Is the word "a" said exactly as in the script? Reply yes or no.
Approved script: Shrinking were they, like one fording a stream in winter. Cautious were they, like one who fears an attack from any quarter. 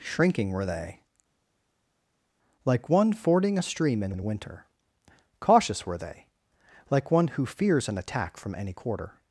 yes